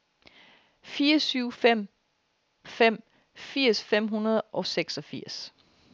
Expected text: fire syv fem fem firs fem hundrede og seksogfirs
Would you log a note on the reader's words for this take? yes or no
no